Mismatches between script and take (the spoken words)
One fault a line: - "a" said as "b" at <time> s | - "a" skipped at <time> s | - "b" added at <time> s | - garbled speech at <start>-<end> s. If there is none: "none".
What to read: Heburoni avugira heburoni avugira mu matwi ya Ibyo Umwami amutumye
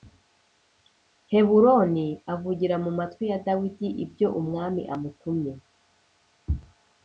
- "heburoni avugira" skipped at 2.8 s
- "Dawidi" added at 3.5 s